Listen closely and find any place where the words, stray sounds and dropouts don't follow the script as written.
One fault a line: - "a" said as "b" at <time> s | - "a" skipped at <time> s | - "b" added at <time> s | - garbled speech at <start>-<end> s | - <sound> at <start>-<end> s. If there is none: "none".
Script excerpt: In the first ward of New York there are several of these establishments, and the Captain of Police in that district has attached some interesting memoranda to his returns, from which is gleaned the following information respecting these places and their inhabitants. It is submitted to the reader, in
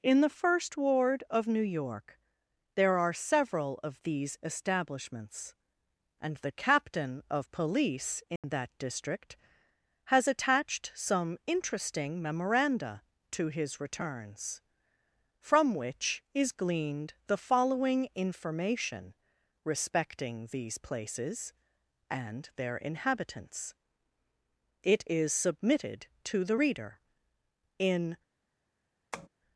- dropout at 8.4-8.4 s
- tap at 29.1-29.3 s